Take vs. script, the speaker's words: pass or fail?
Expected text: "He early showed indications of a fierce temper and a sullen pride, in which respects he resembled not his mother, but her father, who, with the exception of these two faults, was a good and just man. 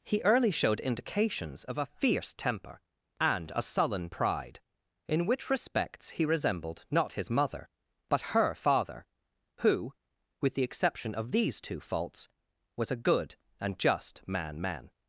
fail